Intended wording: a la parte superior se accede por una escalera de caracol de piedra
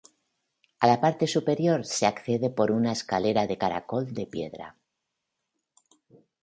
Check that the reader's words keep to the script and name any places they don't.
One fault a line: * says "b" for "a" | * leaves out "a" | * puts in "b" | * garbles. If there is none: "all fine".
all fine